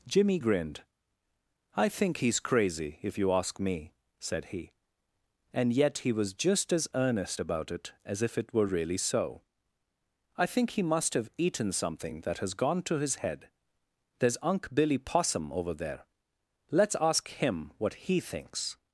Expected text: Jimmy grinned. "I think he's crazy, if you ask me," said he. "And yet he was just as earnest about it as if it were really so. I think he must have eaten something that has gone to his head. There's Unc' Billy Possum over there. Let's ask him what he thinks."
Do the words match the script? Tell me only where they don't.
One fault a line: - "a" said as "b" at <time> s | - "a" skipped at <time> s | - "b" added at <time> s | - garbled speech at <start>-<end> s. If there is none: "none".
none